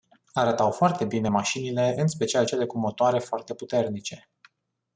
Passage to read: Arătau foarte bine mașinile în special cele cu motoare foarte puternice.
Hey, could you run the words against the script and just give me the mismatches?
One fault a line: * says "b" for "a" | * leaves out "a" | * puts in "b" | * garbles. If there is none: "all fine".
all fine